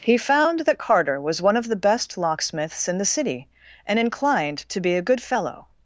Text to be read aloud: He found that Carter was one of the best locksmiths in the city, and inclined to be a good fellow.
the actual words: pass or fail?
pass